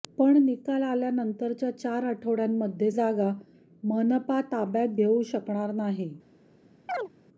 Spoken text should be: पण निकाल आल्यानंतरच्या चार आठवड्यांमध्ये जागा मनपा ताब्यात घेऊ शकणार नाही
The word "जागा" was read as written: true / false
true